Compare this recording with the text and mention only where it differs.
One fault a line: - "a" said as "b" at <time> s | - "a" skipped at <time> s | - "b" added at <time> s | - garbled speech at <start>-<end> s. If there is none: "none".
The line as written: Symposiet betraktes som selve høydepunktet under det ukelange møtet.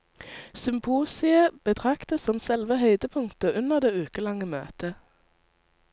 none